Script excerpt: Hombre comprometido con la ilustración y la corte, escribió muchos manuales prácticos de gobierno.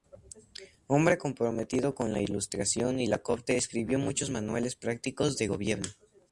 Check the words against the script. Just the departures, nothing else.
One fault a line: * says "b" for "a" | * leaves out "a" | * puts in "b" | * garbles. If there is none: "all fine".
all fine